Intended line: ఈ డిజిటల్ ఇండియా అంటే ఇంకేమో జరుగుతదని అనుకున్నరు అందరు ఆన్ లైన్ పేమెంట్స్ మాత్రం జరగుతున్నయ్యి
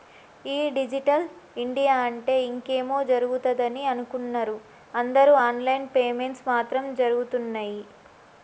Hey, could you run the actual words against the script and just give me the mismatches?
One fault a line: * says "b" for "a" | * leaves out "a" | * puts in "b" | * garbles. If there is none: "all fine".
all fine